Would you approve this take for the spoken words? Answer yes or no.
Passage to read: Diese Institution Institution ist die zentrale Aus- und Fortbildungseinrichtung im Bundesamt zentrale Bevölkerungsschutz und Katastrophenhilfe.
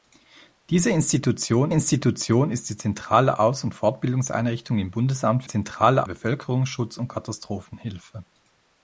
yes